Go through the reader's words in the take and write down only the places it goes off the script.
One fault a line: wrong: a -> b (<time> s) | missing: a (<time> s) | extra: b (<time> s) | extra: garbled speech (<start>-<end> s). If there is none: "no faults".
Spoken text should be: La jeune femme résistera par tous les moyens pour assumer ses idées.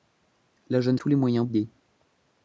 missing: femme résistera par (1.0 s)
missing: pour assumer ses (1.5 s)